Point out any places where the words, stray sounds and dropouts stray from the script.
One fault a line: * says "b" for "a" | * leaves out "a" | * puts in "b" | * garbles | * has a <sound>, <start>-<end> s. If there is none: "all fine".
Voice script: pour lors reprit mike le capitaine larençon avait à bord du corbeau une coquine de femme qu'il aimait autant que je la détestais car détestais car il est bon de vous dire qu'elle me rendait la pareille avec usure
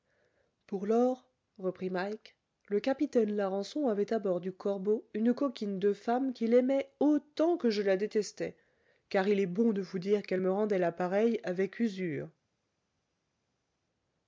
* leaves out "détestais car"